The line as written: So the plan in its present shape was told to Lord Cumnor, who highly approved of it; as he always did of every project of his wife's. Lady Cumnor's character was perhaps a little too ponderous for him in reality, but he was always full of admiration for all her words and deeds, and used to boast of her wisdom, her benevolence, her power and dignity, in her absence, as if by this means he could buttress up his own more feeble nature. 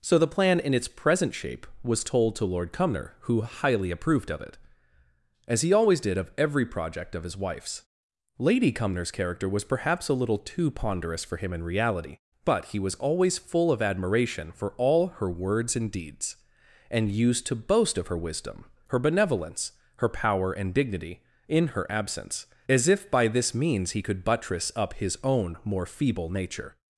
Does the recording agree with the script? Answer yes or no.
yes